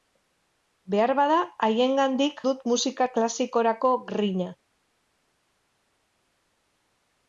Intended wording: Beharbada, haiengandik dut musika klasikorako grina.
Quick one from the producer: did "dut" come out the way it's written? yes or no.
yes